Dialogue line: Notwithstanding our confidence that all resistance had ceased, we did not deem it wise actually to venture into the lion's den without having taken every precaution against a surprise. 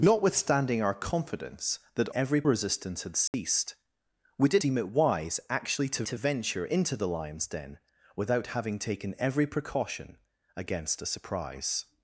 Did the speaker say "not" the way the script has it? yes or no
no